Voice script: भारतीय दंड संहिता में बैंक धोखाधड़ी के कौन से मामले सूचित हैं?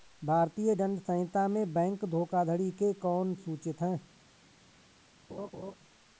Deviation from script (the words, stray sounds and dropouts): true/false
true